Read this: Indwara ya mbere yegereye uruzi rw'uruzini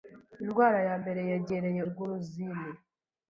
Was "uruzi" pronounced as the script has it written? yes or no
no